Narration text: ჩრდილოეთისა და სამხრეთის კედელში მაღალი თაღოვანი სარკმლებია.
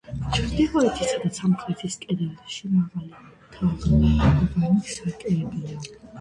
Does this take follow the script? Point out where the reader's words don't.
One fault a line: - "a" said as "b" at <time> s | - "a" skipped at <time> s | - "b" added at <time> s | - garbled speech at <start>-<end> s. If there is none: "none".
none